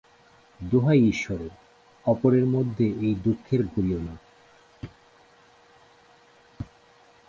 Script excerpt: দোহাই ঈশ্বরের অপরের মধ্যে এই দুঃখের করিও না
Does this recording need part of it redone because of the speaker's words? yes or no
no